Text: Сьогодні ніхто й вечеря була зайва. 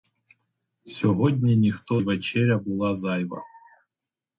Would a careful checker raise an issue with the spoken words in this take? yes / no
no